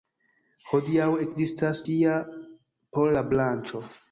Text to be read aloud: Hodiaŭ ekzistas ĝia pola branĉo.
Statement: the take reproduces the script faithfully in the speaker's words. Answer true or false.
true